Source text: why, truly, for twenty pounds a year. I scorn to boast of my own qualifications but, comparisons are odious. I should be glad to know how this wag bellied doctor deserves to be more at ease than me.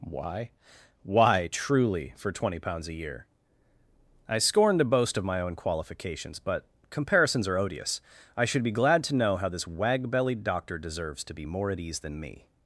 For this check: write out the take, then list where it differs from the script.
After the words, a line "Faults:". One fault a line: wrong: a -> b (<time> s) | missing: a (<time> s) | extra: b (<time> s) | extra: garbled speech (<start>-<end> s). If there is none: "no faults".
why why, truly, for twenty pounds a year. I scorn to boast of my own qualifications but, comparisons are odious. I should be glad to know how this wag bellied doctor deserves to be more at ease than me.
Faults:
extra: why (1.0 s)